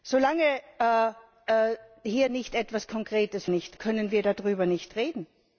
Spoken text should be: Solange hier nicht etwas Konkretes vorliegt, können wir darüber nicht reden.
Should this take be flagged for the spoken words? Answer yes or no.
yes